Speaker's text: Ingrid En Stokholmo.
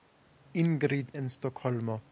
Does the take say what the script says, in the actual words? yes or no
yes